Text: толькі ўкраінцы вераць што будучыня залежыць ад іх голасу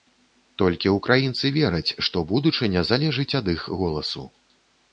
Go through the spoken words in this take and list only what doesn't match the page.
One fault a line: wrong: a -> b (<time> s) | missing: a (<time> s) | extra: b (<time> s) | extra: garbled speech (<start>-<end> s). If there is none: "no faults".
no faults